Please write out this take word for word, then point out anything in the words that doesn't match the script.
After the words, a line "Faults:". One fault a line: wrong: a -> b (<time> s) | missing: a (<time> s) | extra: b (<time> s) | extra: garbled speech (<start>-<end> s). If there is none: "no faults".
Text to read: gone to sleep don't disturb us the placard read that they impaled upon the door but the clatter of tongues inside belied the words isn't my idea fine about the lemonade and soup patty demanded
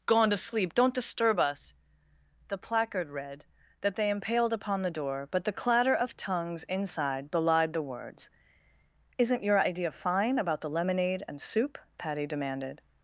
gone to sleep don't disturb us the placard read that they impaled upon the door but the clatter of tongues inside belied the words isn't your idea fine about the lemonade and soup patty demanded
Faults:
wrong: my -> your (9.4 s)